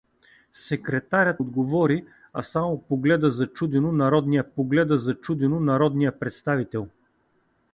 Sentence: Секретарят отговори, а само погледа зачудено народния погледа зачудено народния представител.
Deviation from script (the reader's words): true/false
false